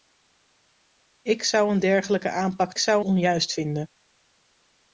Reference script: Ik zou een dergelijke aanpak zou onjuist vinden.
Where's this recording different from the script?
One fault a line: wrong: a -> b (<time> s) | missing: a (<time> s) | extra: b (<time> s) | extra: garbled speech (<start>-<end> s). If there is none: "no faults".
no faults